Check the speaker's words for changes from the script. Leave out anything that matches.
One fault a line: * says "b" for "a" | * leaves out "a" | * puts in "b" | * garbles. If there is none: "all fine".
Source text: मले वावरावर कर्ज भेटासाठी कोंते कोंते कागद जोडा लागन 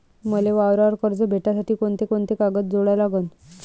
all fine